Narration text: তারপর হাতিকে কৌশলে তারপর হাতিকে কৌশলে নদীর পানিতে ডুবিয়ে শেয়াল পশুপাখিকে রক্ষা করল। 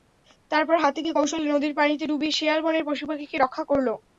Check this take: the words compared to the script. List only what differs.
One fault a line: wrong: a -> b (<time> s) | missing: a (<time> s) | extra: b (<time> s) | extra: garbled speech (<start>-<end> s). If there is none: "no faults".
missing: তারপর হাতিকে কৌশলে (1.5 s)
extra: বনের (2.6 s)